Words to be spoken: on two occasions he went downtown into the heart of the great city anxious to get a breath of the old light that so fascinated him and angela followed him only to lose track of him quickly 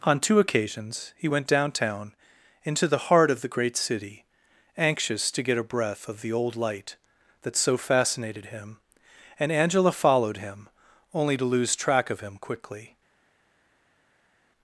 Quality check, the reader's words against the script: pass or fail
pass